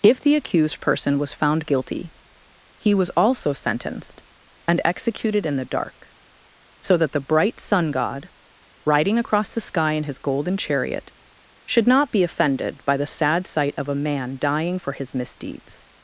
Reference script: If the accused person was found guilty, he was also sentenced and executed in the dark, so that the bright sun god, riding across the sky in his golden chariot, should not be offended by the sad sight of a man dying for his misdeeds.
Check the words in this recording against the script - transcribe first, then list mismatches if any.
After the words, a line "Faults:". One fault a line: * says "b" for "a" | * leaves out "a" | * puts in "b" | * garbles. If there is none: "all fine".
If the accused person was found guilty, he was also sentenced and executed in the dark, so that the bright sun god, riding across the sky in his golden chariot, should not be offended by the sad sight of a man dying for his misdeeds.
Faults:
all fine